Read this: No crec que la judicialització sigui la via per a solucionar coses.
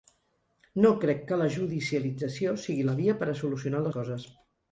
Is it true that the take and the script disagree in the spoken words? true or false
false